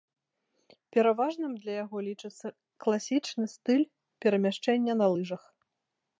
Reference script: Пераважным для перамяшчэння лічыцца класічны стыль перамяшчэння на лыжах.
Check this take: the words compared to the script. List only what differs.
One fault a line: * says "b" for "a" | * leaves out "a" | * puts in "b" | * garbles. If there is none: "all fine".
* says "яго" for "перамяшчэння"